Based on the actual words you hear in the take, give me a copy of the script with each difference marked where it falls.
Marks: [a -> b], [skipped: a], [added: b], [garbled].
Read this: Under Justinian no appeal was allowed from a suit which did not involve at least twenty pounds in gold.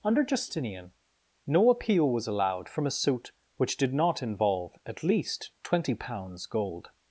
Under Justinian no appeal was allowed from a suit which did not involve at least twenty pounds [skipped: in] gold.